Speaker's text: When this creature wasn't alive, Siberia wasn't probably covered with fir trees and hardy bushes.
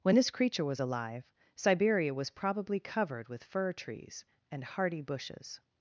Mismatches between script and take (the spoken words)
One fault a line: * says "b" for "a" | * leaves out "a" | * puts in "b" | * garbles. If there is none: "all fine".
* says "was" for "wasn't"
* says "was" for "wasn't"